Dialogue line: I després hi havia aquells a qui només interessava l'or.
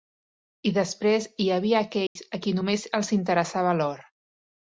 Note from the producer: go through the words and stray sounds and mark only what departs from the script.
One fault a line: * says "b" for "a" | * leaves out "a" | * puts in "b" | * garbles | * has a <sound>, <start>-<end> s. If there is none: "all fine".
* has a dropout, 2.1-2.2 s
* puts in "els"